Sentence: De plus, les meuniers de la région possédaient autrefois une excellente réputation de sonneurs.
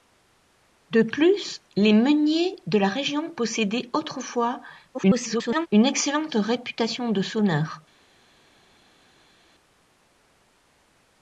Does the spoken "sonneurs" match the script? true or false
true